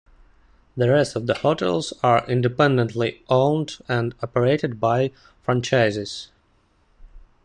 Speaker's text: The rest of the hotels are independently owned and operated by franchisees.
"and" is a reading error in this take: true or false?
false